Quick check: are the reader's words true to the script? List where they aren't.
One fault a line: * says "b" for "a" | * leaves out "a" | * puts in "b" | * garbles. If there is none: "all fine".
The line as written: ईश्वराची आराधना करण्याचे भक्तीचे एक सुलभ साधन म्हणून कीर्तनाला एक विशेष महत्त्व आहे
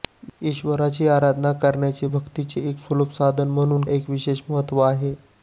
* leaves out "कीर्तनाला"